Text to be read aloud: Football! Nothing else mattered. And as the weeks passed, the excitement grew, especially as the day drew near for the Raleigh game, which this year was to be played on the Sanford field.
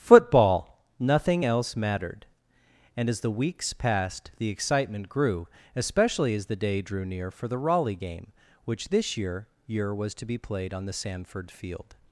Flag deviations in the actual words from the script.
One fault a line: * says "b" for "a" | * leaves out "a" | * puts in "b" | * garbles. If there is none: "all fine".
* puts in "year"